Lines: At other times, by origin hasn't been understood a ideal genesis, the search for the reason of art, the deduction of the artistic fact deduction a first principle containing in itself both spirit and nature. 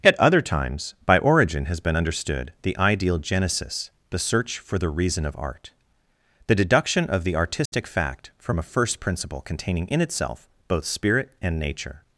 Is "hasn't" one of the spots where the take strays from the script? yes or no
yes